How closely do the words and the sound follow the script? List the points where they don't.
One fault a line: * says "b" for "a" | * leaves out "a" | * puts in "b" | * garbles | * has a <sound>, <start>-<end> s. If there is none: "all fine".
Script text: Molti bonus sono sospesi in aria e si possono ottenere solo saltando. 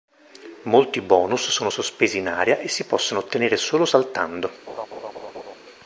* has a laugh, 4.7-5.6 s